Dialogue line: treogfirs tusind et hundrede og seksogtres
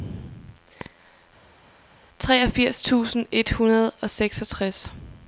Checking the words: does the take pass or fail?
pass